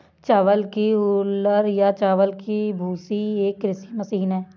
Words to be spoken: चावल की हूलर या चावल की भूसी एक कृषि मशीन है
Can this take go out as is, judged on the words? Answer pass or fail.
pass